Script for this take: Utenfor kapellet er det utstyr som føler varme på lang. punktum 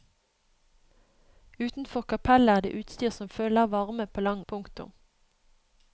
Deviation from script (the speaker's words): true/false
false